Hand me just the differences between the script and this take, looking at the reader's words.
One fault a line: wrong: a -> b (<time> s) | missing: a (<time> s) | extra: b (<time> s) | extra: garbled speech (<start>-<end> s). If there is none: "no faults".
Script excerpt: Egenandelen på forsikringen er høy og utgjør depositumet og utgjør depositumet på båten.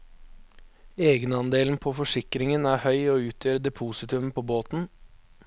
missing: og utgjør depositumet (4.3 s)